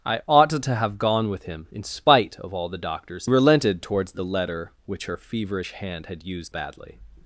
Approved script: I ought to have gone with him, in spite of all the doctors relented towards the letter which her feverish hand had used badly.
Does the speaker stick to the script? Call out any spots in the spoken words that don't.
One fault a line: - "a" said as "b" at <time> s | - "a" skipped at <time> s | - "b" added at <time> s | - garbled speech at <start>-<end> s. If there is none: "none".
none